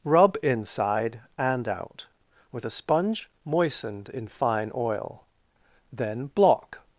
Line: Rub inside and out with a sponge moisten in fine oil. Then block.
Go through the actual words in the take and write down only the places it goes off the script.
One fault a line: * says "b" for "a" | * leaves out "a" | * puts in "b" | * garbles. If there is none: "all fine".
* says "moistened" for "moisten"